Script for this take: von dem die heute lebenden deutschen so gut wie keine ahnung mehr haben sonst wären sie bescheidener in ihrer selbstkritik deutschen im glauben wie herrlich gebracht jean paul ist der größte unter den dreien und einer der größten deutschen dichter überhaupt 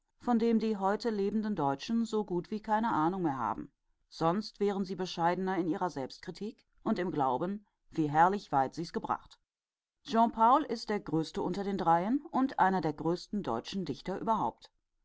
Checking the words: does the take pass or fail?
fail